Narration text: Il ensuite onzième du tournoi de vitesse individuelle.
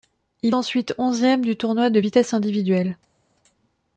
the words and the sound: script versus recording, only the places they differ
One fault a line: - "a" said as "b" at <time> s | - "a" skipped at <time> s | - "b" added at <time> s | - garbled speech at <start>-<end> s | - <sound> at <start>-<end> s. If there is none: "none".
none